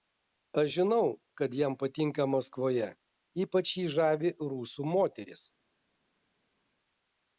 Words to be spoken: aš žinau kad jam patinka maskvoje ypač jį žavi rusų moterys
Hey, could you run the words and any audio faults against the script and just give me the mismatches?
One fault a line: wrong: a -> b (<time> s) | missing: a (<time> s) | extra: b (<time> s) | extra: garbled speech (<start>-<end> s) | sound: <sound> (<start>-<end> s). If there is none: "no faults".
no faults